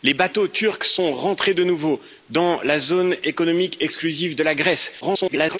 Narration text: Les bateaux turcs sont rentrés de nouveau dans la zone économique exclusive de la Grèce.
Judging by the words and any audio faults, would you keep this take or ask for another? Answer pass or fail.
fail